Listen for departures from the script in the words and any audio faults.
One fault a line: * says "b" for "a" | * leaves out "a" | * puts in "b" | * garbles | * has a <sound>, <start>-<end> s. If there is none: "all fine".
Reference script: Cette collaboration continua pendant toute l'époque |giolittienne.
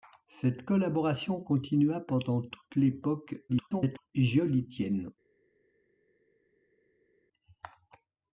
* garbles